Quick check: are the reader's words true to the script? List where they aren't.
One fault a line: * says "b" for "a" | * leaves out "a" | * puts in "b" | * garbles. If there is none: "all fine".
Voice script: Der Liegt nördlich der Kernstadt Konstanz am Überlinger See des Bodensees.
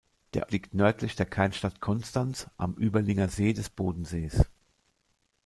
all fine